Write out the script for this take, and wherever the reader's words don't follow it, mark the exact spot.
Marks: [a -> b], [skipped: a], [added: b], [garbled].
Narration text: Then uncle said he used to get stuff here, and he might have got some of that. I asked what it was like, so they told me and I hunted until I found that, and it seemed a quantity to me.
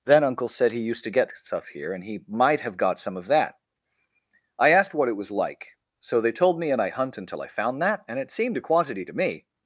Then uncle said he used to get stuff here, and he might have got some of that. I asked what it was like, so they told me and I [hunted -> hunt] until I found that, and it seemed a quantity to me.